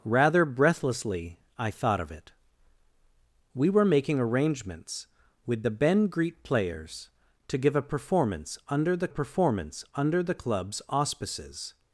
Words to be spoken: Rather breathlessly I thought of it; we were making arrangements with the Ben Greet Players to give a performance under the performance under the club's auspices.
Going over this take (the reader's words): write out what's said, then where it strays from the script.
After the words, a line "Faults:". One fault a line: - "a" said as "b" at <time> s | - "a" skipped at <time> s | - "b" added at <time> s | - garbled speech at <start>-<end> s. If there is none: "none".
Rather breathlessly I thought of it; we were making arrangements with the Ben Greet Players to give a performance under the performance under the club's auspices.
Faults:
none